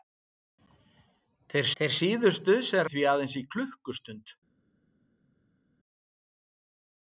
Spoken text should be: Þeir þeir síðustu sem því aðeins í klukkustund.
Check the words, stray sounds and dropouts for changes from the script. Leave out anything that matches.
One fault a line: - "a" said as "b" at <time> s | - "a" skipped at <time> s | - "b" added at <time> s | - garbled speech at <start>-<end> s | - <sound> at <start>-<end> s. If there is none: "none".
none